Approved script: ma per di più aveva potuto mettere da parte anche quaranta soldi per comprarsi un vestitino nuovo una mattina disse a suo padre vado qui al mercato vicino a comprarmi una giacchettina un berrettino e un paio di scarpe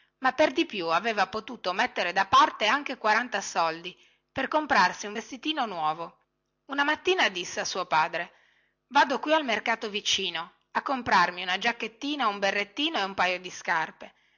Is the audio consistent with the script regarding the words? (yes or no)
yes